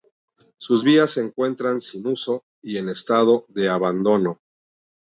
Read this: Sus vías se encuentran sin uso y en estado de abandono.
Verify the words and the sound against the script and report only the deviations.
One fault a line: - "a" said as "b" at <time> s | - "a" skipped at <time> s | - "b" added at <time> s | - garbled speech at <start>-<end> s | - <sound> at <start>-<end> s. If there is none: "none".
none